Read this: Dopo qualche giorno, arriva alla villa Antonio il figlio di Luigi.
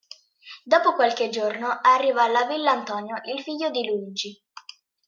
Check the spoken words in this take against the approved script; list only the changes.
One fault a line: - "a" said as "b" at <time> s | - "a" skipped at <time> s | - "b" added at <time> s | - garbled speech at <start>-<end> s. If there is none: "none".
none